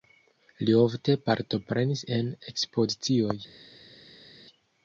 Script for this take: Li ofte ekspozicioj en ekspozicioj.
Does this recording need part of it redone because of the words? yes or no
yes